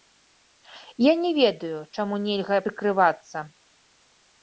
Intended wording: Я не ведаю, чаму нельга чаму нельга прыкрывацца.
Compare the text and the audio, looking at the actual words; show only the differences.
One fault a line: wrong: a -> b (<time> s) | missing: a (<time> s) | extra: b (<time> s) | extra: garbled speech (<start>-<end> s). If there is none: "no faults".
missing: чаму нельга (2.6 s)